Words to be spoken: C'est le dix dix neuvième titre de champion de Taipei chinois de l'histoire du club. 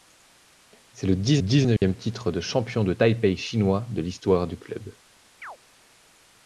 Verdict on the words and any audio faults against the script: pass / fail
fail